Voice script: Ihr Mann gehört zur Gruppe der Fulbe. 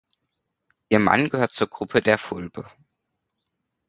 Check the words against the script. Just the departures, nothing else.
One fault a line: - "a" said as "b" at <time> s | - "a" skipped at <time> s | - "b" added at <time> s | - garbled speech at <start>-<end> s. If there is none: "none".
none